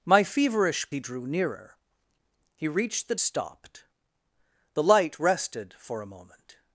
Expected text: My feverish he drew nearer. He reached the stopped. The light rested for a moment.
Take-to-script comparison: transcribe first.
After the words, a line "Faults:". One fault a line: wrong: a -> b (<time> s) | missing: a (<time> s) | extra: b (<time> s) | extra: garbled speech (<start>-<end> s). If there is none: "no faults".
My feverish he drew nearer. He reached the stopped. The light rested for a moment.
Faults:
no faults